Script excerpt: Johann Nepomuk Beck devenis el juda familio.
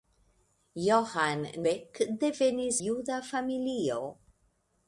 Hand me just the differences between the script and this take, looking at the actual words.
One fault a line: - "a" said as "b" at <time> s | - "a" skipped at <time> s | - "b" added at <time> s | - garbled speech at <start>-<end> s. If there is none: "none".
- "Nepomuk" skipped at 1.4 s
- "el" skipped at 2.8 s